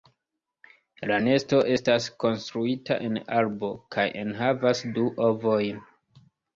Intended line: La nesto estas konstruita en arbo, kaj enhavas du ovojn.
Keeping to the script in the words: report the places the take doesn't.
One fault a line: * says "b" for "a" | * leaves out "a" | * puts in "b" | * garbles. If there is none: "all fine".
all fine